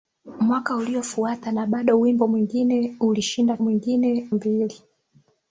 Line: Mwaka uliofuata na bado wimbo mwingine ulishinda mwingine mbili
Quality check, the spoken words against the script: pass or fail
pass